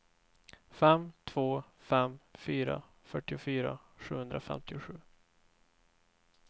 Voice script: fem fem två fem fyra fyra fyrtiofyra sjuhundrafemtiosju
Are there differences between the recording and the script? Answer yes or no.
yes